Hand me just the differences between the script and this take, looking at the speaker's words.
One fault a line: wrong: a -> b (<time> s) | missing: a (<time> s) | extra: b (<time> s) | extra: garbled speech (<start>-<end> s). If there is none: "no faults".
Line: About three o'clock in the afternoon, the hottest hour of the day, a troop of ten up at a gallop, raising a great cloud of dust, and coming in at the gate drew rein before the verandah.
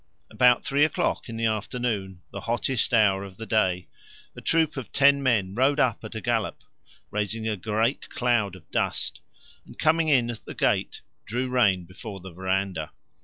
extra: men rode (5.2 s)